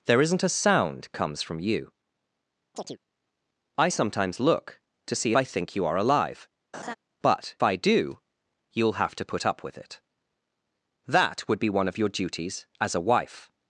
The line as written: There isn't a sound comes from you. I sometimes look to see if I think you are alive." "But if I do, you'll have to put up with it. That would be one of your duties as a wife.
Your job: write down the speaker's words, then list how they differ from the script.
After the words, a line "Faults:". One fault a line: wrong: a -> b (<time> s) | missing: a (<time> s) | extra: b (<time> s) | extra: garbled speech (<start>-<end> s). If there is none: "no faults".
There isn't a sound comes from you. I sometimes look to see I think you are alive." "But I do, you'll have to put up with it. That would be one of your duties as a wife.
Faults:
missing: if (5.3 s)
missing: if (7.6 s)